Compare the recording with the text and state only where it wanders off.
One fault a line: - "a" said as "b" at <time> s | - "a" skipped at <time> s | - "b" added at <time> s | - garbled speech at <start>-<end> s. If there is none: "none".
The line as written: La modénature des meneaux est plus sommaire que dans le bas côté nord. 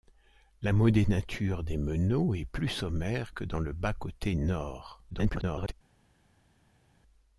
- garbled speech at 5.1-5.7 s